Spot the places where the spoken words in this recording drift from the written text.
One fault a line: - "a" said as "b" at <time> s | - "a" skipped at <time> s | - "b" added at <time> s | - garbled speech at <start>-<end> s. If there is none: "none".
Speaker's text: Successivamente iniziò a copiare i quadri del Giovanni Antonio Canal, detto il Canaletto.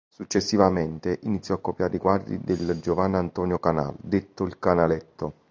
none